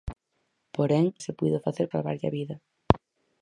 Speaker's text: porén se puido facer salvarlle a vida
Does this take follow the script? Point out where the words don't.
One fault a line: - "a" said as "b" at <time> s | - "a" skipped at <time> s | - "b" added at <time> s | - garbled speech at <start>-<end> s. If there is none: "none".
none